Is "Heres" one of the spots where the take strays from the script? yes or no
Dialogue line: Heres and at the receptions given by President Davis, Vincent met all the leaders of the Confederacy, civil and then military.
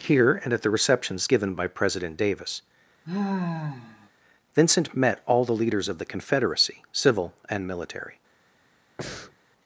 yes